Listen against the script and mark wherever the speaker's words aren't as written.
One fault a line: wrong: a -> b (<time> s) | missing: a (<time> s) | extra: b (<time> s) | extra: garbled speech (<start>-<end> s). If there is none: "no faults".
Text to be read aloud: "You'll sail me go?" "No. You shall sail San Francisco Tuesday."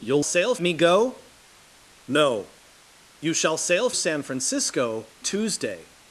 no faults